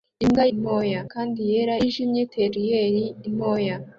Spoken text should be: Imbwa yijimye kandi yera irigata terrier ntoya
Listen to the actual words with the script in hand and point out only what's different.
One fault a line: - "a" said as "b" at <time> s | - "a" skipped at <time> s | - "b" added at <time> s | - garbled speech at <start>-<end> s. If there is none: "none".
- "yijimye" said as "ntoya" at 0.6 s
- "irigata" said as "yijimye" at 1.8 s